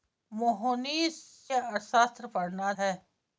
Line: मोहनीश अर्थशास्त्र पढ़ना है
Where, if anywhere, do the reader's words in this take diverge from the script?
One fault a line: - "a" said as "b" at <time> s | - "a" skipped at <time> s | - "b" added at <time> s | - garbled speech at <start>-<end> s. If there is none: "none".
none